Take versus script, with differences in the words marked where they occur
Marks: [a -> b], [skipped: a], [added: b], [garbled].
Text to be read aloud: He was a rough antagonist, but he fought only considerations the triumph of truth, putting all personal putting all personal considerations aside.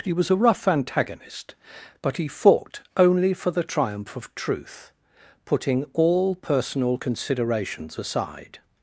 He was a rough antagonist, but he fought only [considerations -> for] the triumph of truth, putting all personal [skipped: putting all personal] considerations aside.